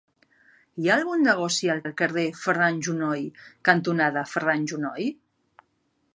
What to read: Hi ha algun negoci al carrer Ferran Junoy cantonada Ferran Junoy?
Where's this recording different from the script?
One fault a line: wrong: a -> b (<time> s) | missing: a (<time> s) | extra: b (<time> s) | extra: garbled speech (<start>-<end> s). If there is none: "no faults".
extra: al (1.8 s)